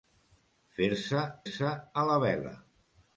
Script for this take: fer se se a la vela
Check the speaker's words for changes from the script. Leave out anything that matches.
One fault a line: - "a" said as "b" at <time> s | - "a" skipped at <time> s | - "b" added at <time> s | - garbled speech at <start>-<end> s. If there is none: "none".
none